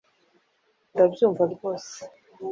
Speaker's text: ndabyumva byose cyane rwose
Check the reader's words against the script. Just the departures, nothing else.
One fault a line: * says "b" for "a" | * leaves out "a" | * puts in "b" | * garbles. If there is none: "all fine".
* leaves out "byose cyane"